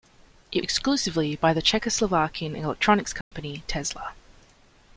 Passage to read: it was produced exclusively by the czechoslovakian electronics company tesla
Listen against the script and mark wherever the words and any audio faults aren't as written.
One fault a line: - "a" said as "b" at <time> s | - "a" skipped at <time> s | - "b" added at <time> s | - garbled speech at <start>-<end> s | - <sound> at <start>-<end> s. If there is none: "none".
- "was produced" skipped at 0.7 s
- dropout at 3.2-3.3 s